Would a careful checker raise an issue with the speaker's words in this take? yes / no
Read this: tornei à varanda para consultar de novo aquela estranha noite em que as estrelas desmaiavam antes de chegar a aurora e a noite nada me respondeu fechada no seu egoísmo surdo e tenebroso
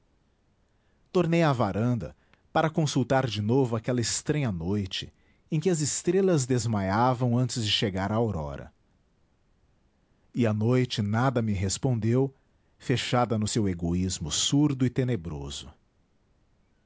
no